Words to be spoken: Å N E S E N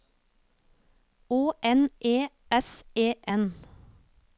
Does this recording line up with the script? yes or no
yes